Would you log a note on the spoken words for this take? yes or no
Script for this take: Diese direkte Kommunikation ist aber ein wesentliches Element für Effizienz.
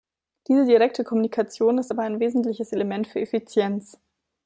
no